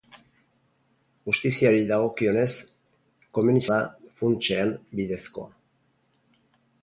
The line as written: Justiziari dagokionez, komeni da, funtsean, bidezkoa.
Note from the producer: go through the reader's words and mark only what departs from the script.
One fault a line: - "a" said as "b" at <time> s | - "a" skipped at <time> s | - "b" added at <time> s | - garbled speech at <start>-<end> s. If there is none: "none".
none